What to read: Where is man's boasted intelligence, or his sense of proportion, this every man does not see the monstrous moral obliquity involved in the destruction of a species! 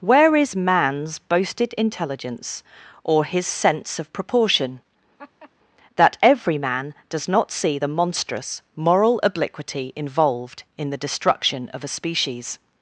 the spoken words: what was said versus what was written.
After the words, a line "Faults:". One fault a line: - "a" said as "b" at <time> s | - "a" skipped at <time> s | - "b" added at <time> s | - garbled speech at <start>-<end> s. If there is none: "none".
Where is man's boasted intelligence, or his sense of proportion, that every man does not see the monstrous moral obliquity involved in the destruction of a species!
Faults:
- "this" said as "that" at 5.9 s